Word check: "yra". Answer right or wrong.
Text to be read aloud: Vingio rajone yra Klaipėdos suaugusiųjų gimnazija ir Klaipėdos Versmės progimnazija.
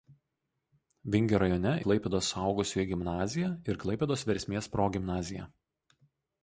wrong